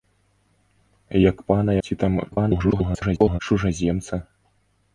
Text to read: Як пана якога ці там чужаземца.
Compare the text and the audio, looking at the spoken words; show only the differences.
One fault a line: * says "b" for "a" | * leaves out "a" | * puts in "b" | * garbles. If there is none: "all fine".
* leaves out "якога"
* garbles